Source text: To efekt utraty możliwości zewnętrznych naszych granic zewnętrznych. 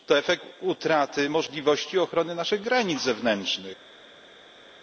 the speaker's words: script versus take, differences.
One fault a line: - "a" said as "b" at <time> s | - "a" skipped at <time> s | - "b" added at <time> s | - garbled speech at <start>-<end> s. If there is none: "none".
- "zewnętrznych" said as "ochrony" at 2.0 s